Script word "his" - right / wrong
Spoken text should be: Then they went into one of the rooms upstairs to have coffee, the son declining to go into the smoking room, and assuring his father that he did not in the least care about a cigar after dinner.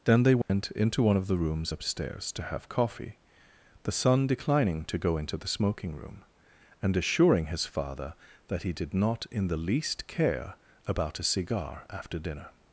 right